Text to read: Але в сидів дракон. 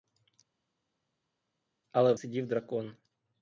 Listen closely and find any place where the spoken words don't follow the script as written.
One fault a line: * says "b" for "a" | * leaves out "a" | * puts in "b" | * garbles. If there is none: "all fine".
all fine